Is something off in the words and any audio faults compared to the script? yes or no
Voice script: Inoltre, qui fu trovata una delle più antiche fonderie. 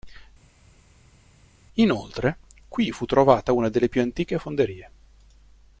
no